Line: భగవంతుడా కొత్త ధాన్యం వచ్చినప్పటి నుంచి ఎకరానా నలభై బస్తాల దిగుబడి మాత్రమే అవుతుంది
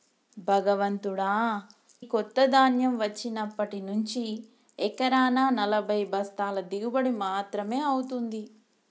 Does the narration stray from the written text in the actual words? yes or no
no